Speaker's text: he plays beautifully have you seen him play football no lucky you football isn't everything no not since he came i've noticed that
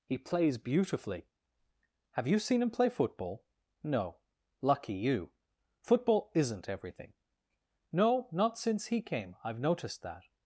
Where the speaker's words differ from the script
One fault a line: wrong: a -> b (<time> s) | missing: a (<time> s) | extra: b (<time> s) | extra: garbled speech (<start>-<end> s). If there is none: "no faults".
no faults